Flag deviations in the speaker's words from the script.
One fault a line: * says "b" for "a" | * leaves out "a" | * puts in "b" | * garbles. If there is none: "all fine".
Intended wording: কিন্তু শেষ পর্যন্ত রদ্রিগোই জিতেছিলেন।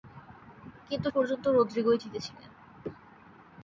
* leaves out "শেষ"